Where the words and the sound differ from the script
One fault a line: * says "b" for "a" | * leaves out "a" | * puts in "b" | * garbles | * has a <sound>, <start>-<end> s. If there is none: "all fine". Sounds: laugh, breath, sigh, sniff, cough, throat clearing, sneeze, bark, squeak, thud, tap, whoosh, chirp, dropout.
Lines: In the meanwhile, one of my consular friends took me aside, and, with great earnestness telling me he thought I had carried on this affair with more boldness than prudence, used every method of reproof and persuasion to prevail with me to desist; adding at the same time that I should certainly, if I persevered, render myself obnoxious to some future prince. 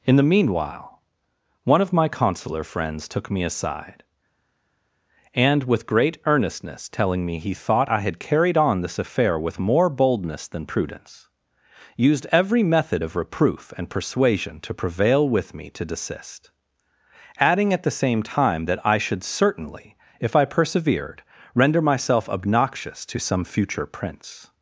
all fine